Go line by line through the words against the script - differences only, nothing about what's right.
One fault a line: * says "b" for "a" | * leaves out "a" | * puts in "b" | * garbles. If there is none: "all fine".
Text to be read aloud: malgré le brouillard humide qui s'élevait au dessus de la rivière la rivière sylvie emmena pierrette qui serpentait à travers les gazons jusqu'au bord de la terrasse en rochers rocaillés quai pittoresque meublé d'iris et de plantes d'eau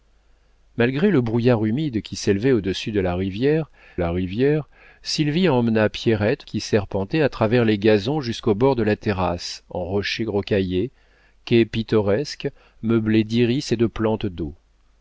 all fine